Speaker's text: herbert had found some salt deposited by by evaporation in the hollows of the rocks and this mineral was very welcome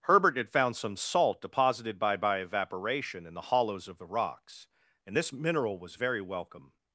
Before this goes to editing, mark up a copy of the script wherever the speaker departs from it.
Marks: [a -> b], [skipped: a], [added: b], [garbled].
herbert had found some salt deposited by by evaporation in the hollows of the rocks and this mineral was very welcome